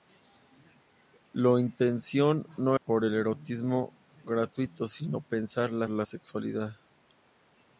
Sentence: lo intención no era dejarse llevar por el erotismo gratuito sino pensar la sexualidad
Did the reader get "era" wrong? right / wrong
wrong